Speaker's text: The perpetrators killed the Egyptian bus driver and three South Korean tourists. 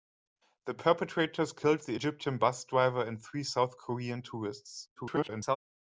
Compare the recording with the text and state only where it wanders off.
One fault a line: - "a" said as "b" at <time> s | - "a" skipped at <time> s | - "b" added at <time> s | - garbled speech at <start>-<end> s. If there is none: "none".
- garbled speech at 5.0-5.6 s